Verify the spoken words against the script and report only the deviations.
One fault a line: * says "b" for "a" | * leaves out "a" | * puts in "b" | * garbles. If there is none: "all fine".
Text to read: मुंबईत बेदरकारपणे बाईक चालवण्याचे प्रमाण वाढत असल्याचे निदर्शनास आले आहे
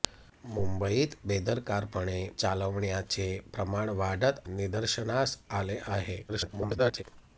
* leaves out "बाईक"
* leaves out "असल्याचे"
* garbles